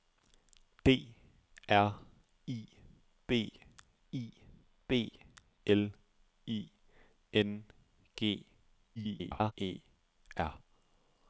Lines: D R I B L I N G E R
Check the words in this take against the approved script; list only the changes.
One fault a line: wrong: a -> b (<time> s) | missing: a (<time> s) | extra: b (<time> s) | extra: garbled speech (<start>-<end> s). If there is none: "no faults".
extra: I B (4.1 s)
extra: garbled speech (9.0-9.5 s)